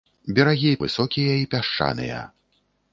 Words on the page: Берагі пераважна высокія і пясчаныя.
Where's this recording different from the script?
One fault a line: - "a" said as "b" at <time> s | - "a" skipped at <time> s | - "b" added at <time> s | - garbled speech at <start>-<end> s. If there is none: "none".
- "пераважна" skipped at 0.7 s